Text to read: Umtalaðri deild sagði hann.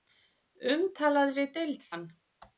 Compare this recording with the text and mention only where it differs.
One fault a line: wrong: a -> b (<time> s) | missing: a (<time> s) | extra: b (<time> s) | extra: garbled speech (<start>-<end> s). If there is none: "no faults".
missing: sagði (1.9 s)